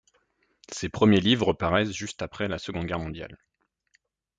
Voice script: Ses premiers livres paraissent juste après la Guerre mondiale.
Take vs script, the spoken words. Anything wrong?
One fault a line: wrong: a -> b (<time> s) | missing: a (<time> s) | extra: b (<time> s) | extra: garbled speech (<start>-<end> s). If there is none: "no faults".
extra: Seconde (2.6 s)